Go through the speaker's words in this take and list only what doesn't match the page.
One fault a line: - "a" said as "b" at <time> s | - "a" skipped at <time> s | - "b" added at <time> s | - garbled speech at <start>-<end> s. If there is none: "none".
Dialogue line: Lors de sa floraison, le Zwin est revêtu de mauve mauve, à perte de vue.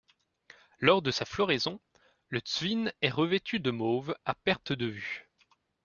- "mauve" skipped at 4.1 s